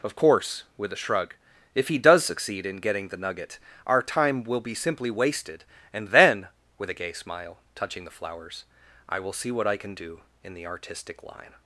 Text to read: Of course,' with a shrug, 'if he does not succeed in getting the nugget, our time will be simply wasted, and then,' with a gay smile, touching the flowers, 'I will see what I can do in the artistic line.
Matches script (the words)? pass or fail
fail